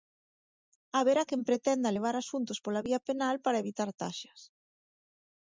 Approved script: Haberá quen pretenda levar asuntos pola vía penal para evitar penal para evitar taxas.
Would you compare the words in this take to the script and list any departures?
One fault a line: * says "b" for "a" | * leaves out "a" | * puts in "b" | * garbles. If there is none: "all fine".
* leaves out "penal para evitar"